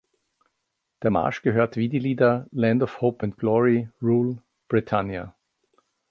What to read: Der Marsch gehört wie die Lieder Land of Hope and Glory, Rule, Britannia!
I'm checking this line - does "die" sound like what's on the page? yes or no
yes